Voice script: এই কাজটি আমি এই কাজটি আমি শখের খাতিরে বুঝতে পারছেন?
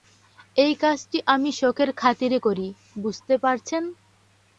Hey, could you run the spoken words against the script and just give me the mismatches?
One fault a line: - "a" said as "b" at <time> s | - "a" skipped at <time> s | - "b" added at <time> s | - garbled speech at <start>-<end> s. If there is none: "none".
- "এই কাজটি আমি" skipped at 1.5 s
- "করি" added at 2.4 s